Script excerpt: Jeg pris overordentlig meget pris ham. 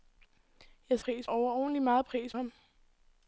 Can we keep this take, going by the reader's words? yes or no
yes